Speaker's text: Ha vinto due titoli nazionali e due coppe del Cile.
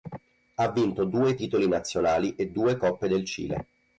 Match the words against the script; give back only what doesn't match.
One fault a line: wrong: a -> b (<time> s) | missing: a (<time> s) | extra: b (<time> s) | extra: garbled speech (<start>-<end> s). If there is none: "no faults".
no faults